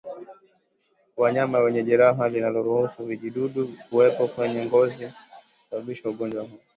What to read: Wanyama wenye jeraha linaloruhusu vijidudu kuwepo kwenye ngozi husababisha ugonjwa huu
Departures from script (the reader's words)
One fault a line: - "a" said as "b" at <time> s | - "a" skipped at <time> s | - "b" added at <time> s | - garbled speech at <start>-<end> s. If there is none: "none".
none